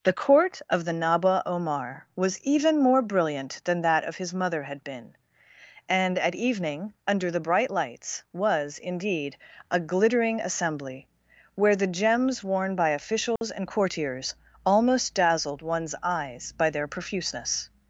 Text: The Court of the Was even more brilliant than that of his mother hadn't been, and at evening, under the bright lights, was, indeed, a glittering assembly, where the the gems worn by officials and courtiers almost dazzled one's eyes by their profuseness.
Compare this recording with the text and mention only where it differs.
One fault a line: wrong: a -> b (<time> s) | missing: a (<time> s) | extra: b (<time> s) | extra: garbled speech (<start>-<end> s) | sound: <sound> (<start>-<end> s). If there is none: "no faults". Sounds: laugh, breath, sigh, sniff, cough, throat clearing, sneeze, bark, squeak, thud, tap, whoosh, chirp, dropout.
extra: Naba Omar (0.9 s)
wrong: hadn't -> had (4.6 s)
missing: the (11.9 s)
sound: dropout (13.4-13.4 s)